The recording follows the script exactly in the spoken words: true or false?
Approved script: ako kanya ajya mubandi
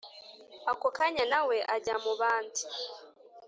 false